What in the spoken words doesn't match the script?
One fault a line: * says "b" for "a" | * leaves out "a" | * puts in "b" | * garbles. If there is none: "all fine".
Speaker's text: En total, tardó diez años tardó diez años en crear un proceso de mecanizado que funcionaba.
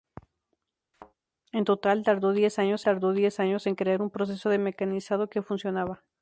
all fine